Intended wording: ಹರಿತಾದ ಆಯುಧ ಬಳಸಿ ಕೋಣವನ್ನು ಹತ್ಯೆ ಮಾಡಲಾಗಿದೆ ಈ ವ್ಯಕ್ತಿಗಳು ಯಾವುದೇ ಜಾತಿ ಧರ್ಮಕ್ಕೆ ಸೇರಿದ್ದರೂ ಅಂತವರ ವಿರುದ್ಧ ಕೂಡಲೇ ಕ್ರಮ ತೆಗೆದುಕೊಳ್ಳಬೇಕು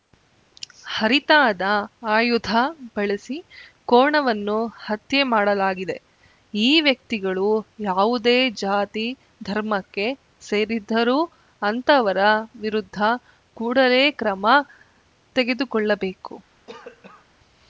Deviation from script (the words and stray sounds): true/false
true